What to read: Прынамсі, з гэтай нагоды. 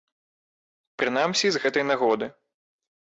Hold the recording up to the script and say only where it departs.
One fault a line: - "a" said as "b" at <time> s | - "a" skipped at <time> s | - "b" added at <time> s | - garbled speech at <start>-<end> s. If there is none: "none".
none